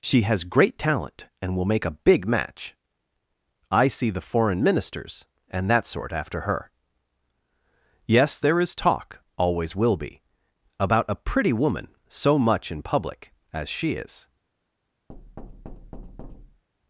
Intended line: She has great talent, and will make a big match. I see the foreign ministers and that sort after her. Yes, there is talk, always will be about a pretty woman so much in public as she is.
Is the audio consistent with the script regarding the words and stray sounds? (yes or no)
no